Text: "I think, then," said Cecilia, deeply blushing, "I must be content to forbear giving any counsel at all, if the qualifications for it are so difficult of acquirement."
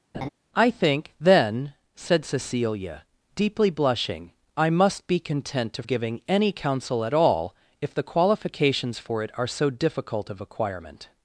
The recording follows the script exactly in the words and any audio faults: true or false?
false